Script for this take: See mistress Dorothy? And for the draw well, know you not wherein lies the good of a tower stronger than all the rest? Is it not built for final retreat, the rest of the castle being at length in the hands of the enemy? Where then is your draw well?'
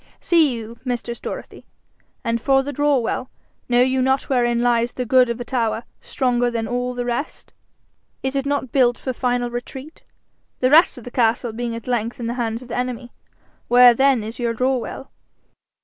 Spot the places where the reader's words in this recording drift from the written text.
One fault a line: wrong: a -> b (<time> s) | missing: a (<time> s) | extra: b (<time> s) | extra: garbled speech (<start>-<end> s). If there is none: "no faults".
extra: you (0.6 s)